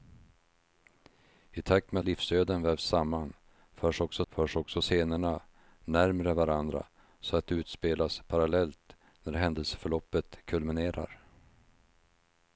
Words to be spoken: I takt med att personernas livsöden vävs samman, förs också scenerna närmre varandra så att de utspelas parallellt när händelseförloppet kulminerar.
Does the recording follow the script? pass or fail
fail